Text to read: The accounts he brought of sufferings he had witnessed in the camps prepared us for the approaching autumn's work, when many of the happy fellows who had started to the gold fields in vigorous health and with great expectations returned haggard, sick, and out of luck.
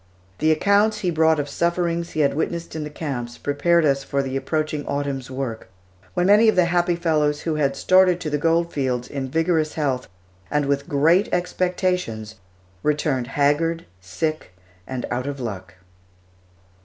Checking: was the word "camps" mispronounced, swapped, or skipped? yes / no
no